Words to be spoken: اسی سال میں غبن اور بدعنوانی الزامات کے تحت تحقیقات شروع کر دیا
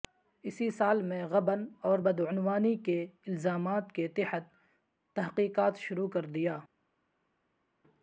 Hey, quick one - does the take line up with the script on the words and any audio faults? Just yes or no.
no